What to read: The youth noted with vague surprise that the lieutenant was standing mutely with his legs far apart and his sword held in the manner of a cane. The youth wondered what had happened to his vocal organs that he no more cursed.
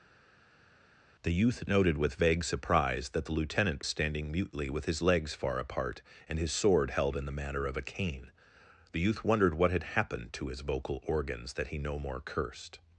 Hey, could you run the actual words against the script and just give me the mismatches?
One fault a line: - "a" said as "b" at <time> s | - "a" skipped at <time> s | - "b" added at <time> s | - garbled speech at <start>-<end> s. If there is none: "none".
- "was" skipped at 3.8 s